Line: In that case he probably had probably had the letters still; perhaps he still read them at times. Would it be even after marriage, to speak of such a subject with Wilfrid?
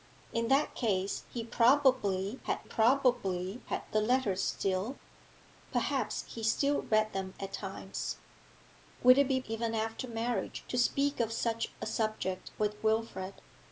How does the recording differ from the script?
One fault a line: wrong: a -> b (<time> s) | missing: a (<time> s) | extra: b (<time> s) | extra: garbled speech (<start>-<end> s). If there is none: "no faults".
no faults